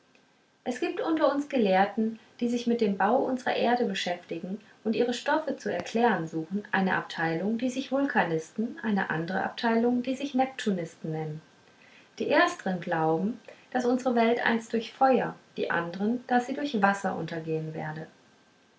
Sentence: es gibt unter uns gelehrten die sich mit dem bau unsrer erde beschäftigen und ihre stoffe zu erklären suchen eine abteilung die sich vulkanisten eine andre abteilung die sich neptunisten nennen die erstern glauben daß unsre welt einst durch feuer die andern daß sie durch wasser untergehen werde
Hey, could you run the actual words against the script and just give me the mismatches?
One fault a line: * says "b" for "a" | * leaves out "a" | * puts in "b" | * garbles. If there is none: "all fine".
all fine